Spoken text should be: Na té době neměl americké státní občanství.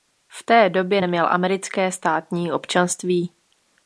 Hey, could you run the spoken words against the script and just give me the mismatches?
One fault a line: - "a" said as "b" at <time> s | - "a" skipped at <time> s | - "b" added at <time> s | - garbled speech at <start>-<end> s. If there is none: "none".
- "Na" said as "V" at 0.3 s